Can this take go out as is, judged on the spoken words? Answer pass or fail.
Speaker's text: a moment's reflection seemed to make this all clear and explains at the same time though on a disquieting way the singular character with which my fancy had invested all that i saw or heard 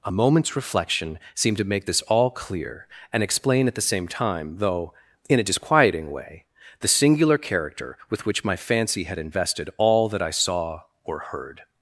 fail